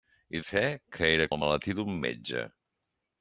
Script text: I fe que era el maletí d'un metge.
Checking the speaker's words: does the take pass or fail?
pass